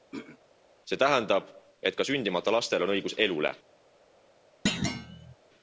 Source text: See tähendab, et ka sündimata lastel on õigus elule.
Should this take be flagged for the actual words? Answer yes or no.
no